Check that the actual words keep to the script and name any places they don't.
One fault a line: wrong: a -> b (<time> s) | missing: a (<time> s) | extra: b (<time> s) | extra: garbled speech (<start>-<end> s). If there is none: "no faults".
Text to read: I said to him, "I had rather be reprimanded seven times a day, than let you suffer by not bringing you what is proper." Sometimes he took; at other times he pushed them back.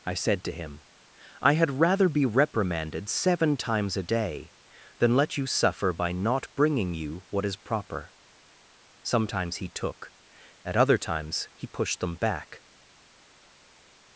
no faults